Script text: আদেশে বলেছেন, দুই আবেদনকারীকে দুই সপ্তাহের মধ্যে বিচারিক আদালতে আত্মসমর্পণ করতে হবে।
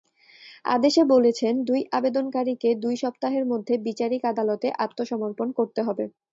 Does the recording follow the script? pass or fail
pass